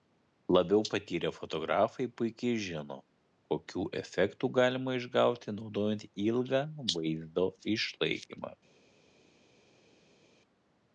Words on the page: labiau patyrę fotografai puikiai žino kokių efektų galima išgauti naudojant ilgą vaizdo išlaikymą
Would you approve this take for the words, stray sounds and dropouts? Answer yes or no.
yes